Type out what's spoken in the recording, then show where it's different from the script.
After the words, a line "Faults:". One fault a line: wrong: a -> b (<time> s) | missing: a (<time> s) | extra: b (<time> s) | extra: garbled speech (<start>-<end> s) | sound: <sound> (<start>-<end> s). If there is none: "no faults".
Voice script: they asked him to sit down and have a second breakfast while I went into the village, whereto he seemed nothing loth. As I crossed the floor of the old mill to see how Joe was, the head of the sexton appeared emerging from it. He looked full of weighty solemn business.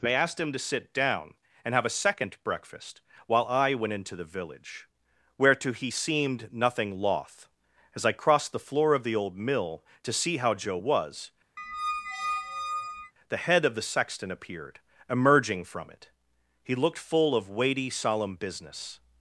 they asked him to sit down and have a second breakfast while I went into the village, whereto he seemed nothing loth. As I crossed the floor of the old mill to see how Joe was, the head of the sexton appeared emerging from it. He looked full of weighty solemn business.
Faults:
sound: squeak (11.6-13.1 s)